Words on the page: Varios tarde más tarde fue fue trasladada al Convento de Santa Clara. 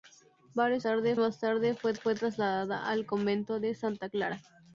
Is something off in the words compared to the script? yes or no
no